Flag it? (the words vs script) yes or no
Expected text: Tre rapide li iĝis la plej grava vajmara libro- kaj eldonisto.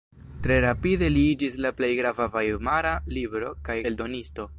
no